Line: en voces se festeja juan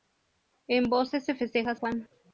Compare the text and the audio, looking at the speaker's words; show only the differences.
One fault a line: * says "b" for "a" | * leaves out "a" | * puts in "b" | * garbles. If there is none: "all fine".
all fine